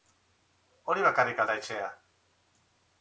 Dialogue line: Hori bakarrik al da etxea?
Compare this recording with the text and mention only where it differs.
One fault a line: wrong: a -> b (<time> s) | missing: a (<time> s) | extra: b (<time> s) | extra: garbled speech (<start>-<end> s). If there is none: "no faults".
no faults